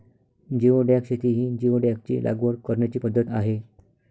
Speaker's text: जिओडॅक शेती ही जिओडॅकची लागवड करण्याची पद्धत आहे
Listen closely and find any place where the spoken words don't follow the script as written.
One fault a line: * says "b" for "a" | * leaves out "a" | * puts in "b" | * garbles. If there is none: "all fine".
all fine